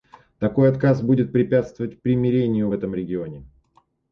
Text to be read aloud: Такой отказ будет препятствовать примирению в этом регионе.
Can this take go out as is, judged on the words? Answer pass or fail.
pass